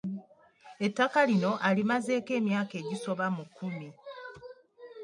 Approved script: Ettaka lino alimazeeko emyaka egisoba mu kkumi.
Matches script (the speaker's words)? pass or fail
pass